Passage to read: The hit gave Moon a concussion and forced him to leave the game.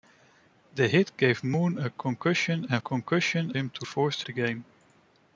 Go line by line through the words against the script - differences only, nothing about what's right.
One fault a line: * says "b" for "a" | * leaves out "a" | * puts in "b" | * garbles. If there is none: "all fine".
* says "concussion" for "forced"
* says "forced" for "leave"